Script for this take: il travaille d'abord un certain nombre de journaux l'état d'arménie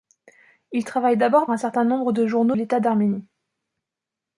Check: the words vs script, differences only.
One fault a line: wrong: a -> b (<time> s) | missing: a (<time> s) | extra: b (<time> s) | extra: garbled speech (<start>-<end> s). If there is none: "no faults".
no faults